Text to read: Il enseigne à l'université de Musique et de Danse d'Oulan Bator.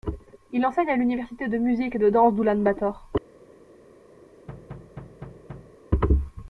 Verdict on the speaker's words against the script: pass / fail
pass